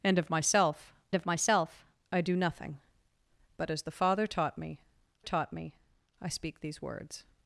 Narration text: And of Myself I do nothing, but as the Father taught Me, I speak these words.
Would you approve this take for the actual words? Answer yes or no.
no